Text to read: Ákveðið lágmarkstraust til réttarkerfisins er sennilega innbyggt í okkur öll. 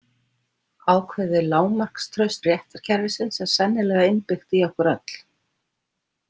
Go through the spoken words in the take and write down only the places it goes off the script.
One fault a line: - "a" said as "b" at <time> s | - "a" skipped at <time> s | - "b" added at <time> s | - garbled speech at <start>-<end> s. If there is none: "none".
- "til" skipped at 2.4 s